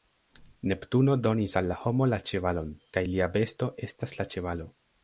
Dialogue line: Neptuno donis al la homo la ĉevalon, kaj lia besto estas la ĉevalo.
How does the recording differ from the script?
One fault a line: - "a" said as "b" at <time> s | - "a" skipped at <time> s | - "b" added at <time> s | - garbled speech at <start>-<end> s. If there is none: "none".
none